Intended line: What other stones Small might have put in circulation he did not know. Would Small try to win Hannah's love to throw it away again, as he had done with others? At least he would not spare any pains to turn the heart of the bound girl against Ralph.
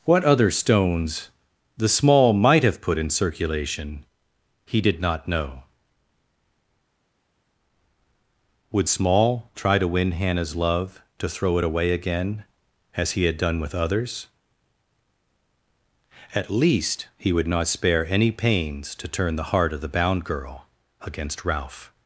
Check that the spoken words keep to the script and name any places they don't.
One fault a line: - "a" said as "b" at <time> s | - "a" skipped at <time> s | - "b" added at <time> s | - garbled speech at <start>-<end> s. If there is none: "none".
- "the" added at 1.8 s